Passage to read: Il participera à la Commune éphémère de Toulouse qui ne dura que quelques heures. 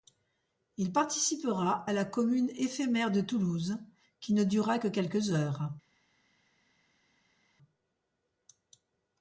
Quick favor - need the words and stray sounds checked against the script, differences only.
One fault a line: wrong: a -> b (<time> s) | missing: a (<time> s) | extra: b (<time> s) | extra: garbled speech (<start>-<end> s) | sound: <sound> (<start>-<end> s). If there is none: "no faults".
no faults